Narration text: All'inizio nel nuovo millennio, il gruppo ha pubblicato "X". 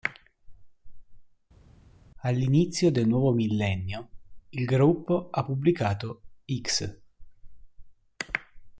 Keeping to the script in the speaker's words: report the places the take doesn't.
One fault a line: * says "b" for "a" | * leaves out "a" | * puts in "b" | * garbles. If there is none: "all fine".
* says "del" for "nel"